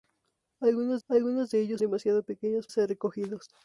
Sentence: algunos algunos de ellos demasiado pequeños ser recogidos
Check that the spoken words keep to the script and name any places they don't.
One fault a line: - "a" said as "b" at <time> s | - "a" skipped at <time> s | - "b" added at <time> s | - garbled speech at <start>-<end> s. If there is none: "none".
none